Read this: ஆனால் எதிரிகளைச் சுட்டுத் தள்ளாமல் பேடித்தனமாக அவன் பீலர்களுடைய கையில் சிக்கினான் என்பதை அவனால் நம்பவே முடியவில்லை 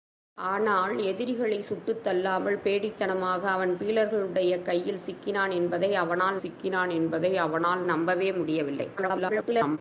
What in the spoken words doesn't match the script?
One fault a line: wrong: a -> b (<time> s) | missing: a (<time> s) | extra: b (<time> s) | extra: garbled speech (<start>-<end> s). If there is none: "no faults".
extra: சிக்கினான் என்பதை அவனால் (6.4 s)
extra: garbled speech (9.0-9.8 s)